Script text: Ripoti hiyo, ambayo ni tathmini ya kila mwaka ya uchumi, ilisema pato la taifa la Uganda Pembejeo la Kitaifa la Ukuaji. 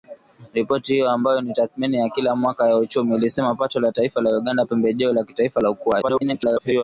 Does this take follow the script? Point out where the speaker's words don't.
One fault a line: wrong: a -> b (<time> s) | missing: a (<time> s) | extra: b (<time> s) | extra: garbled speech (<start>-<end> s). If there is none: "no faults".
extra: garbled speech (6.0-6.8 s)